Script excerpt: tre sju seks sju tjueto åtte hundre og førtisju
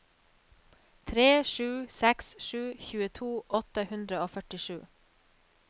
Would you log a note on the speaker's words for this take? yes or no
no